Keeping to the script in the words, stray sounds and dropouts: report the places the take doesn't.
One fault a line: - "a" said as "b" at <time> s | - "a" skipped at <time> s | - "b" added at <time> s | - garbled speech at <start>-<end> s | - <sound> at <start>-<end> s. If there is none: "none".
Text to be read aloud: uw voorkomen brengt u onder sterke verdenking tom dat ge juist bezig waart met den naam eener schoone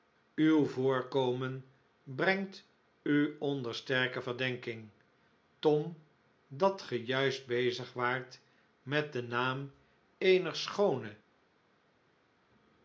none